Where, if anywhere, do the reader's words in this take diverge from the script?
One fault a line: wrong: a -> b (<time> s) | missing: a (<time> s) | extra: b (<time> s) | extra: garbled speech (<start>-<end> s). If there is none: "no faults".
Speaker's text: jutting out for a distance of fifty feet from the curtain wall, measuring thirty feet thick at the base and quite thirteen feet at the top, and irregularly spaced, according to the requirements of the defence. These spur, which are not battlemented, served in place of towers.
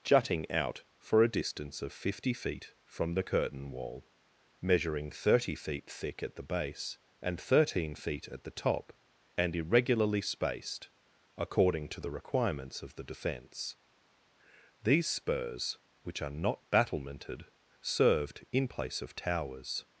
missing: quite (7.4 s)
wrong: spur -> spurs (15.1 s)